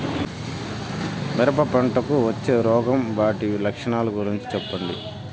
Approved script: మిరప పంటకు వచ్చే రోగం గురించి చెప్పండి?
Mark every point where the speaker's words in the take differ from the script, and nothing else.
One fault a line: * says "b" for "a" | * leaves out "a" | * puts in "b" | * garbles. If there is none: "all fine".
* puts in "వాటి లక్షణాలు"